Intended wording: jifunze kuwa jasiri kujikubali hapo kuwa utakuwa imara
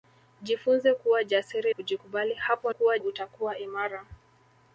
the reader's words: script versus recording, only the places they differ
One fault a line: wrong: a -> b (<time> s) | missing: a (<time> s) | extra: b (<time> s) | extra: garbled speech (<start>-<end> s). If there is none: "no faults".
no faults